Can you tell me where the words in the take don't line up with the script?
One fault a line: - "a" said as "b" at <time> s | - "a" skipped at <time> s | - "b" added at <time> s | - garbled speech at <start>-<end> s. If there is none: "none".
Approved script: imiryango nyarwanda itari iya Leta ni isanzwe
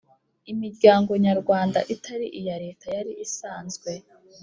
- "ni" said as "yari" at 2.9 s